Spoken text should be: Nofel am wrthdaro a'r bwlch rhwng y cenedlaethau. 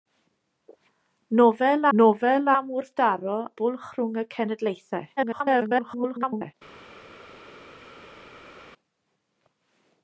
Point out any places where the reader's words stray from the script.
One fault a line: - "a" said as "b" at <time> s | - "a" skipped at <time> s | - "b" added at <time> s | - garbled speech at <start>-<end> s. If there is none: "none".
- "nofel" added at 2.0 s
- "a'r" skipped at 3.4 s
- garbled speech at 5.2-6.5 s